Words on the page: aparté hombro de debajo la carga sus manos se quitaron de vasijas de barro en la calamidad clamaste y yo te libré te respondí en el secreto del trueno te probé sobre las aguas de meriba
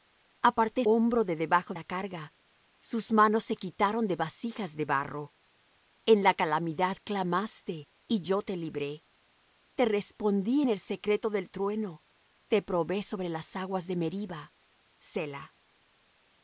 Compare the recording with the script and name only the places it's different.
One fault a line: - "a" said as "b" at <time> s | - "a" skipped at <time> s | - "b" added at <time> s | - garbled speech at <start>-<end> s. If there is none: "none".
none